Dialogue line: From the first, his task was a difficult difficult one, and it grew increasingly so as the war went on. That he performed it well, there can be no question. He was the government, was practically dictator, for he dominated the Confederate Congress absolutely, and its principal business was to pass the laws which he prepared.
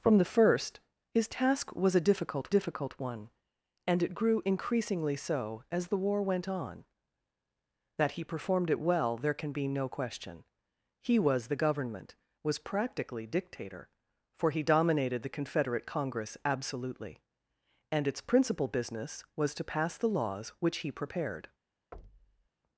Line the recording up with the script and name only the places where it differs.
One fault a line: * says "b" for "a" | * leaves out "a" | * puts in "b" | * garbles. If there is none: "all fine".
all fine